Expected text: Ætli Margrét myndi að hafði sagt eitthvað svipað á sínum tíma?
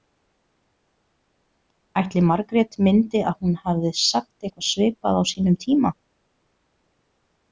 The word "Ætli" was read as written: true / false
true